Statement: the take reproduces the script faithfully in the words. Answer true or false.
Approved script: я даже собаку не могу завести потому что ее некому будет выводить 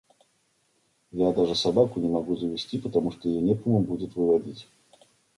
true